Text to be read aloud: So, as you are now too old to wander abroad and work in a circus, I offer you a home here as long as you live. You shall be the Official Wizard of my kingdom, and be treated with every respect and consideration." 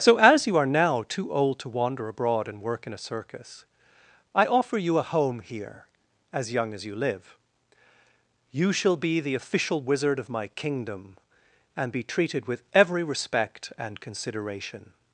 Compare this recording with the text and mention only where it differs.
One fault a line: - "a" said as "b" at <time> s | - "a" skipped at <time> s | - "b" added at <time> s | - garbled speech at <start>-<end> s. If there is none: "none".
- "long" said as "young" at 6.5 s